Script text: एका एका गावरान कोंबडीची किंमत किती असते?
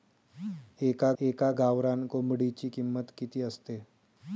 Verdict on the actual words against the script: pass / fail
pass